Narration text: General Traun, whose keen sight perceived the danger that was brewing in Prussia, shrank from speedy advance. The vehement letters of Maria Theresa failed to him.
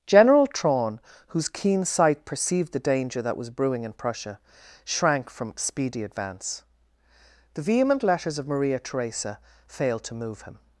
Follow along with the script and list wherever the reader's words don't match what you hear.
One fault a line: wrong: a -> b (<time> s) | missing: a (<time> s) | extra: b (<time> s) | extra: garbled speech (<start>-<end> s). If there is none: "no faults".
extra: move (10.2 s)